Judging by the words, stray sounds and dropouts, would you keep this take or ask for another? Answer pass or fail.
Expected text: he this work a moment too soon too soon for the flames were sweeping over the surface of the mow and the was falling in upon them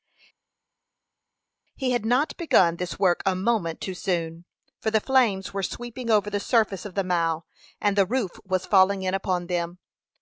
fail